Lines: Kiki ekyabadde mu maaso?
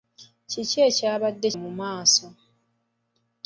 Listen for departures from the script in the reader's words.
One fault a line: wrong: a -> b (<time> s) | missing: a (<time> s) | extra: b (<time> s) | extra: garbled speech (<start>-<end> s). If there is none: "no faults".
no faults